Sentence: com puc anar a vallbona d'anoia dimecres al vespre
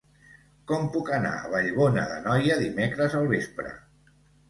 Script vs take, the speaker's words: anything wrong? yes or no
no